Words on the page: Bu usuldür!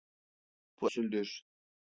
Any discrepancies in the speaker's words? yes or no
no